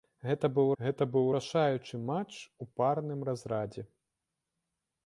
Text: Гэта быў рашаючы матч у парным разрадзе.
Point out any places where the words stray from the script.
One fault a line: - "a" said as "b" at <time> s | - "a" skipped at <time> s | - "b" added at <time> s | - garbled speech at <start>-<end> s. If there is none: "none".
- "гэта быў" added at 0.8 s